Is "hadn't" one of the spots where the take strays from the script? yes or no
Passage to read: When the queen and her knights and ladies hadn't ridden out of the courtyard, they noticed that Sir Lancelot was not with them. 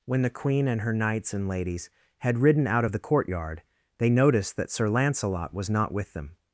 yes